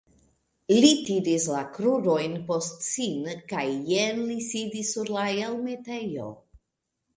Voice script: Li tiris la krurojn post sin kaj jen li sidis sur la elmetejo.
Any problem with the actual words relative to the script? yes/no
no